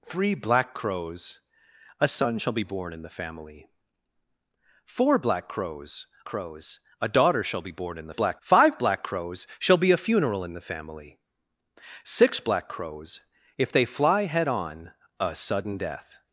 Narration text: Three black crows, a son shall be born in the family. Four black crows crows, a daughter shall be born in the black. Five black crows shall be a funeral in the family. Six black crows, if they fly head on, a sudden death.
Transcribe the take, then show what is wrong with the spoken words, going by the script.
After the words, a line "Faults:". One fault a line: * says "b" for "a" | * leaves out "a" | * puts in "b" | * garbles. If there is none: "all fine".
Three black crows, a son shall be born in the family. Four black crows crows, a daughter shall be born in the black. Five black crows shall be a funeral in the family. Six black crows, if they fly head on, a sudden death.
Faults:
all fine